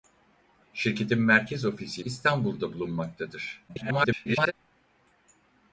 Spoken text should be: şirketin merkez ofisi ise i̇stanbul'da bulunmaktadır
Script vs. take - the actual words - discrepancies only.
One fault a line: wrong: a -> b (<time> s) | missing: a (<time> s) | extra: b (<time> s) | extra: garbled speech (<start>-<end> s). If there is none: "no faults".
missing: ise (2.0 s)
extra: garbled speech (3.7-4.5 s)